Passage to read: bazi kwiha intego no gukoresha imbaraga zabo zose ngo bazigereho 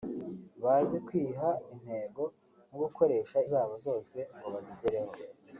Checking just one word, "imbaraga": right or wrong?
wrong